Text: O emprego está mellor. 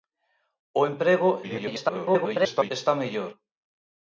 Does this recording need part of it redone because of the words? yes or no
yes